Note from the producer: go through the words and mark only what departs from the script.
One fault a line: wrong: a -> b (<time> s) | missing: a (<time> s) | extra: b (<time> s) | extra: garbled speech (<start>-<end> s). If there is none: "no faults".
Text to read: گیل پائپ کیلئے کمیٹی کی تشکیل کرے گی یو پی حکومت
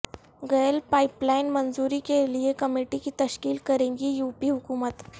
extra: لائن منظوری (1.2 s)